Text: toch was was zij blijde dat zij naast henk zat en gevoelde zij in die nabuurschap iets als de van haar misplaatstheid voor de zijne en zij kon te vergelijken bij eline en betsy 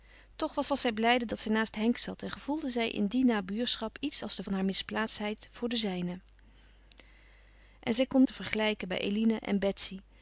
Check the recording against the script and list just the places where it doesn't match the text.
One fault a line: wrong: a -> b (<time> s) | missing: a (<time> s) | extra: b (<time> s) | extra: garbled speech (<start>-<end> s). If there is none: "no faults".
no faults